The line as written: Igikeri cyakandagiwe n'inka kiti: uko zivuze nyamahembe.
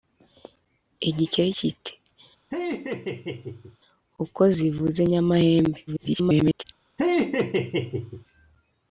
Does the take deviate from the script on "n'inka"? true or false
true